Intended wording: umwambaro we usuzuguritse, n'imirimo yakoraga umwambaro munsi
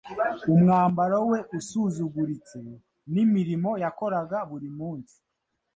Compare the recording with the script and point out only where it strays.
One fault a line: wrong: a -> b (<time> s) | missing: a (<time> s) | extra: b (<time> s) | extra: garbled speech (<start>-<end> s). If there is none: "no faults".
wrong: umwambaro -> buri (4.5 s)